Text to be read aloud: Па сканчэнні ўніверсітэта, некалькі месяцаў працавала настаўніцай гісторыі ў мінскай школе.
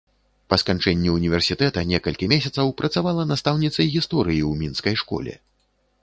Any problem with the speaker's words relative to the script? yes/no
no